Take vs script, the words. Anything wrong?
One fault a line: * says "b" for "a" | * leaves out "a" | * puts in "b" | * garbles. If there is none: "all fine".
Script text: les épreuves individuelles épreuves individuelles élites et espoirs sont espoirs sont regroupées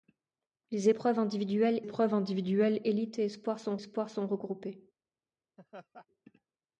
all fine